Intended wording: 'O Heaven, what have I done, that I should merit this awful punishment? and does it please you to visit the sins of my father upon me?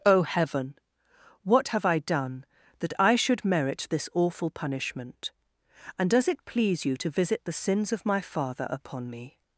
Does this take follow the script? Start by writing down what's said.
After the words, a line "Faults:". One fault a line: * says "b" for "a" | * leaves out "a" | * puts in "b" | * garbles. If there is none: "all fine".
'O Heaven, what have I done, that I should merit this awful punishment? and does it please you to visit the sins of my father upon me?
Faults:
all fine